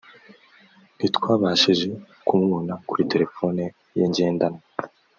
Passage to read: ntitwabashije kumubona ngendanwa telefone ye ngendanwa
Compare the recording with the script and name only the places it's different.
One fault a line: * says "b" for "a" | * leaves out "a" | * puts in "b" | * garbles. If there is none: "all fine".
* says "kuri" for "ngendanwa"